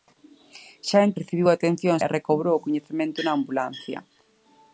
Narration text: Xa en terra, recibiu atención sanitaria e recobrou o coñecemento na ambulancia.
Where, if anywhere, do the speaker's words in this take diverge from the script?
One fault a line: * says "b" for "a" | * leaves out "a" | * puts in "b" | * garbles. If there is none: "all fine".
* leaves out "terra"
* leaves out "sanitaria"